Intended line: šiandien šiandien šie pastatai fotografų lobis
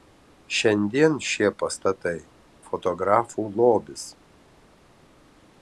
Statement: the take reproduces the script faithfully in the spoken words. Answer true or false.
false